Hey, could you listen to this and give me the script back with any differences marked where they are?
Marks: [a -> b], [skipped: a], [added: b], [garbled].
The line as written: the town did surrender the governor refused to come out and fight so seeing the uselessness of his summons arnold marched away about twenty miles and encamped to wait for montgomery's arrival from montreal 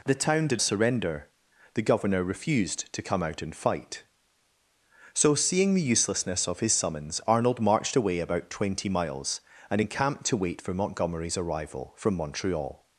the town did surrender the governor refused to come out and fight so seeing the uselessness of his summons arnold marched away about twenty miles and encamped to wait for montgomery's arrival from montreal